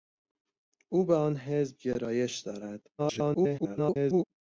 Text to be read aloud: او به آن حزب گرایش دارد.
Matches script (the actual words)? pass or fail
fail